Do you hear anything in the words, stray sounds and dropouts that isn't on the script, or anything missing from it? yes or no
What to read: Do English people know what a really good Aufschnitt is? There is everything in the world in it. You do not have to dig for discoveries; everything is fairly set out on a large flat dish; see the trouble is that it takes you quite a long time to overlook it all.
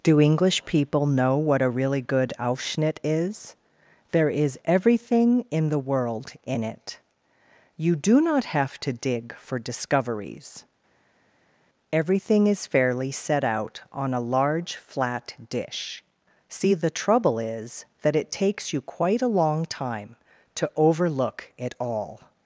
no